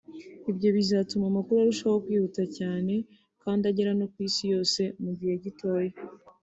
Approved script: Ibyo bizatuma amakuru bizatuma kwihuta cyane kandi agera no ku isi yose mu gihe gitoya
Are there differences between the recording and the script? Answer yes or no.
yes